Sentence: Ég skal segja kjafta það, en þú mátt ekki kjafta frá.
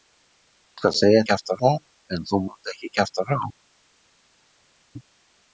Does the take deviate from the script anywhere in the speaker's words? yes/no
no